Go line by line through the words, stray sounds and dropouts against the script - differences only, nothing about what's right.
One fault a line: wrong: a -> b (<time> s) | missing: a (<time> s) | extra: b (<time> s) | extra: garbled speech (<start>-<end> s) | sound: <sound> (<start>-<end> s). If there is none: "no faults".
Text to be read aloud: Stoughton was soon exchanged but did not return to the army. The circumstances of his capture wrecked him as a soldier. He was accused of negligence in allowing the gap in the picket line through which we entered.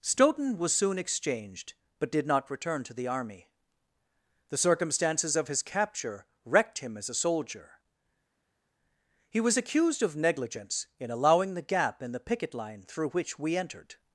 no faults